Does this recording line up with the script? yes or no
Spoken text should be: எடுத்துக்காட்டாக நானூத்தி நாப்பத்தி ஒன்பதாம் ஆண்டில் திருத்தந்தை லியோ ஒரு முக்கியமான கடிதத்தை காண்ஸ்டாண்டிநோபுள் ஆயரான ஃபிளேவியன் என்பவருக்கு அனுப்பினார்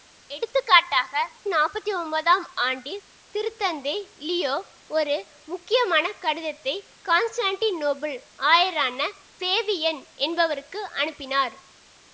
no